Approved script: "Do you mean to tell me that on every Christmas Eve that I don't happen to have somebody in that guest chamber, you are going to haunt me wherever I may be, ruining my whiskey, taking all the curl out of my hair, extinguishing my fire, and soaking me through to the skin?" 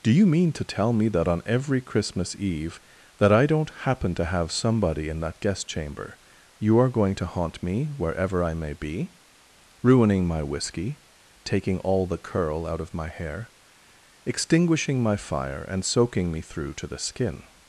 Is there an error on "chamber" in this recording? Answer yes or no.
no